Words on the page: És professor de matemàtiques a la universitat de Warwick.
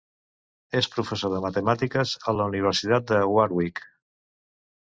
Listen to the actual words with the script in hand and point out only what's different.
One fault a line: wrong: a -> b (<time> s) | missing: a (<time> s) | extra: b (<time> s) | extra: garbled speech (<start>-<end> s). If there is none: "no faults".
no faults